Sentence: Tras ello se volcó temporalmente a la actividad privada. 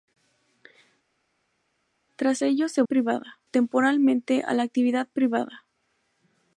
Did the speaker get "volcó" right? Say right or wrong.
wrong